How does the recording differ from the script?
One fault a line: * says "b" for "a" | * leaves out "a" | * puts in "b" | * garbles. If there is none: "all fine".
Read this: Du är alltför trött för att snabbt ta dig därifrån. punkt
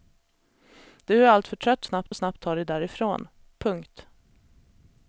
* says "snabbt" for "för"